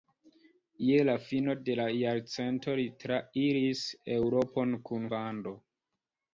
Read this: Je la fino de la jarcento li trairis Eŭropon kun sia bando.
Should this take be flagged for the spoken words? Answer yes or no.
yes